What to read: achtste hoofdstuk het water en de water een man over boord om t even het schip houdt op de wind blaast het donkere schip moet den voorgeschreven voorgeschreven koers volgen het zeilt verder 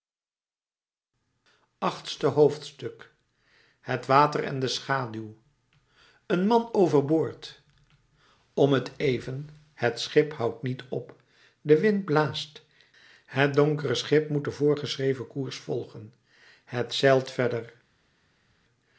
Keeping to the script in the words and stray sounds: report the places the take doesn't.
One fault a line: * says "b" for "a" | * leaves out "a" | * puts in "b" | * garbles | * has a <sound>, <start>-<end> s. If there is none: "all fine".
* says "schaduw" for "water"
* puts in "niet"
* leaves out "voorgeschreven"